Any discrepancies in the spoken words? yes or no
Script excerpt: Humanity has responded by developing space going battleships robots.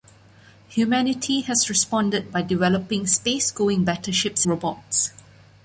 no